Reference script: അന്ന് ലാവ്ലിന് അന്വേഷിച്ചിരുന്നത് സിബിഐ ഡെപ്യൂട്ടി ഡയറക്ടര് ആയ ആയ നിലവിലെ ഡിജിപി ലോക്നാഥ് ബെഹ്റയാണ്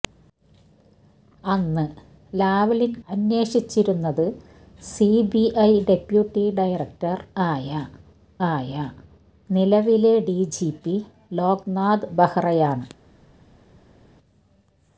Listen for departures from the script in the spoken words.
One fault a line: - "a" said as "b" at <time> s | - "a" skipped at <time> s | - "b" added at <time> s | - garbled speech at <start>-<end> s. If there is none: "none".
none